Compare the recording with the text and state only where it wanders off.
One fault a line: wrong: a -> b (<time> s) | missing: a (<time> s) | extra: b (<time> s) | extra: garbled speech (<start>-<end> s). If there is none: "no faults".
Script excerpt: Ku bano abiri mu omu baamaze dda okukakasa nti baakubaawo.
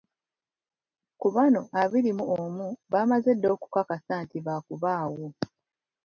no faults